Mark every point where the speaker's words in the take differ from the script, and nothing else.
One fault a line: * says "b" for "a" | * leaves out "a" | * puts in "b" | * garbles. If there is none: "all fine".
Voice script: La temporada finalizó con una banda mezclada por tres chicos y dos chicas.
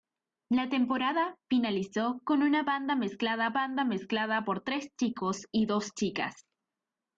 * puts in "banda mezclada"